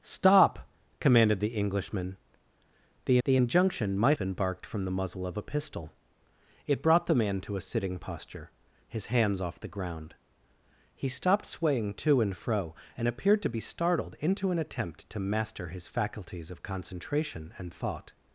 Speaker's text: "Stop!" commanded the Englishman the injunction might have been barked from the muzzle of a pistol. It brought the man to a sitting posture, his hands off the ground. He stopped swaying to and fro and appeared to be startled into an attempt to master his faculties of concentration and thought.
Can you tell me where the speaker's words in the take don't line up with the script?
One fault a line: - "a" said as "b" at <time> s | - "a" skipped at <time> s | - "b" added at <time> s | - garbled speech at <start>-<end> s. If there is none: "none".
- "the" added at 3.2 s
- "have" skipped at 4.2 s